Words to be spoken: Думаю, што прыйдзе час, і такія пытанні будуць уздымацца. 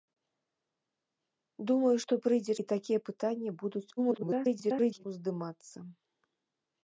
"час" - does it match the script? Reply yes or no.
no